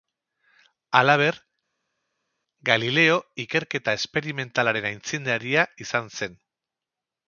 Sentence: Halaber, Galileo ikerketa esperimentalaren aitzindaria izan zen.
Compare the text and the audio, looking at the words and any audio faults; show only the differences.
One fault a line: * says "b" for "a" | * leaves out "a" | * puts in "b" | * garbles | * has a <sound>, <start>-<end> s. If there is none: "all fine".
all fine